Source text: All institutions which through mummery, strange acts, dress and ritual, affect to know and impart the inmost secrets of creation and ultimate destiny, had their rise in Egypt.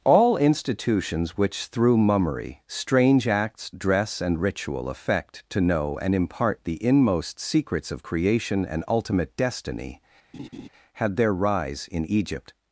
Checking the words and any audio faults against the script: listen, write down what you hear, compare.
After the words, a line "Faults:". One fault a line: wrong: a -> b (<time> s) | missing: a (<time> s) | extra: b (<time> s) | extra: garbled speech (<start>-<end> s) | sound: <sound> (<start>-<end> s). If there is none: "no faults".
All institutions which through mummery, strange acts, dress and ritual, affect to know and impart the inmost secrets of creation and ultimate destiny, had their rise in Egypt.
Faults:
sound: laugh (10.3-10.7 s)